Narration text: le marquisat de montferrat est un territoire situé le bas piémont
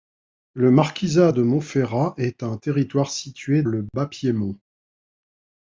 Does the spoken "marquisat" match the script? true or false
true